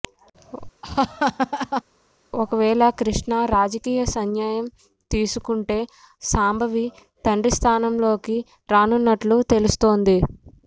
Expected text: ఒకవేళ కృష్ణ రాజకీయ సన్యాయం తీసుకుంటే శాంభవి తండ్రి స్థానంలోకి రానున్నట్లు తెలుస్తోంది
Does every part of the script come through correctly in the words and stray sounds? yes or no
no